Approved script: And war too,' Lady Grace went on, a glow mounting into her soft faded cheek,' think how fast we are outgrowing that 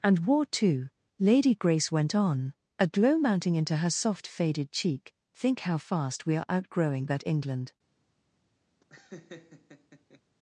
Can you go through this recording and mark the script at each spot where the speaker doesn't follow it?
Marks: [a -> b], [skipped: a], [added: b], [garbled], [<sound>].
And war too,' Lady Grace went on, a glow mounting into her soft faded cheek,' think how fast we are outgrowing that [added: England] [laugh]